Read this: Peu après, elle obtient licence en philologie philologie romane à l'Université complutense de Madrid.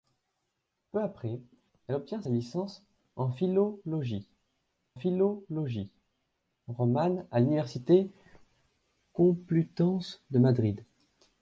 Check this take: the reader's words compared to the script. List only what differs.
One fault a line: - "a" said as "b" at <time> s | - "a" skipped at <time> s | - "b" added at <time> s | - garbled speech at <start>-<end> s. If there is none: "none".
none